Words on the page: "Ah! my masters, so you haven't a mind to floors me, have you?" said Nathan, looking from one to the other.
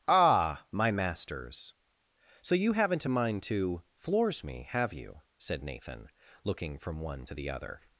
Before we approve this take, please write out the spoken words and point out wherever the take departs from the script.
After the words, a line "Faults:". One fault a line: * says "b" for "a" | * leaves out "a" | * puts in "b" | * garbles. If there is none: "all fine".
"Ah! my masters, so you haven't a mind to floors me, have you?" said Nathan, looking from one to the other.
Faults:
all fine